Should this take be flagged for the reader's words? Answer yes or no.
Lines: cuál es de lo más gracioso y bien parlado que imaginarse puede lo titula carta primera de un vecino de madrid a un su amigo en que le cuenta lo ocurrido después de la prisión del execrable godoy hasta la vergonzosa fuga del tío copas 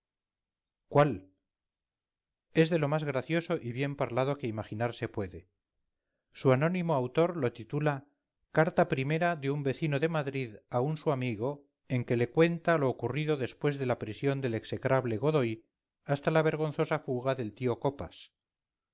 yes